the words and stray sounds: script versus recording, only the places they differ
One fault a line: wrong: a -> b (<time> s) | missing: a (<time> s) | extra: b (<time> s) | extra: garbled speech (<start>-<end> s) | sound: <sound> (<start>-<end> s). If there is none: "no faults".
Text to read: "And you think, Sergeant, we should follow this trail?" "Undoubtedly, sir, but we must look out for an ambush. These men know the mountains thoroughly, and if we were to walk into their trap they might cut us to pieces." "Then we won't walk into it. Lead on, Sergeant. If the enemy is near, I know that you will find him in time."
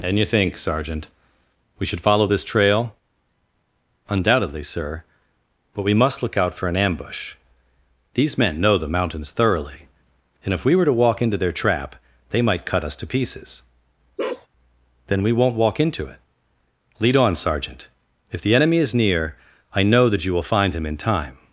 sound: bark (14.2-14.5 s)